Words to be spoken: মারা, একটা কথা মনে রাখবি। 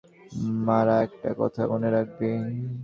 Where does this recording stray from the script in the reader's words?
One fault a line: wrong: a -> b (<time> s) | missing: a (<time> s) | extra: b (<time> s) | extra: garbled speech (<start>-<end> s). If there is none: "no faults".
no faults